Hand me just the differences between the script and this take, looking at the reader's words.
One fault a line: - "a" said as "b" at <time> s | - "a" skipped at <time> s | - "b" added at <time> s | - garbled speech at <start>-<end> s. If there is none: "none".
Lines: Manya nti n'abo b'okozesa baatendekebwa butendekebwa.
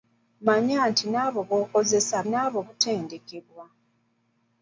- "baatendekebwa" said as "n'abo" at 2.3 s